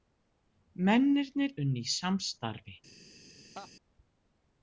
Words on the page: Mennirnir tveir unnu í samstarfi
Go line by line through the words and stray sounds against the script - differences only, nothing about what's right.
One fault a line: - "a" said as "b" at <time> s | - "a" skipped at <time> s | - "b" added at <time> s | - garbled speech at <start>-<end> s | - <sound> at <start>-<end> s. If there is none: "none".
- "tveir" skipped at 1.5 s
- laugh at 3.5-3.7 s